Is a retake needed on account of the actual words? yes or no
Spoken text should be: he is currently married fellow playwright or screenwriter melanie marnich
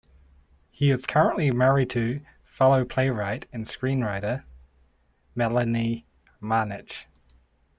yes